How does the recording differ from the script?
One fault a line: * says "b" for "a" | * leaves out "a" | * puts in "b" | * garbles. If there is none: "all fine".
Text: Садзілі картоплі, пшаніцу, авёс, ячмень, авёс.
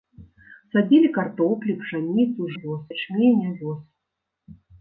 all fine